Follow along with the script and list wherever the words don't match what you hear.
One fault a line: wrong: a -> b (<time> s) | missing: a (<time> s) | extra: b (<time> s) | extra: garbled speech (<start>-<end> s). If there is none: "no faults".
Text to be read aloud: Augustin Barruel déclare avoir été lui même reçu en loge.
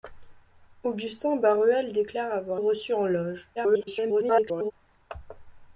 missing: été lui même (2.6 s)
extra: garbled speech (3.6-4.7 s)